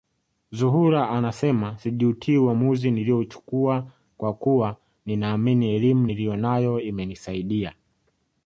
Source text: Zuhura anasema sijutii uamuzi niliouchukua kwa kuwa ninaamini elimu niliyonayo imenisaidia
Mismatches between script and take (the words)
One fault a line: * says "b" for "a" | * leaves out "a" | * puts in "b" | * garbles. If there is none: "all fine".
all fine